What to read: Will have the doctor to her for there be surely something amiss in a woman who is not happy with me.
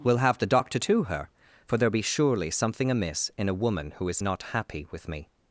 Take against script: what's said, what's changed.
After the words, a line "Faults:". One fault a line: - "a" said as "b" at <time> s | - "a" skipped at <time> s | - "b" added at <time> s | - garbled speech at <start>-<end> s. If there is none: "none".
Will have the doctor to her for there be surely something amiss in a woman who is not happy with me.
Faults:
none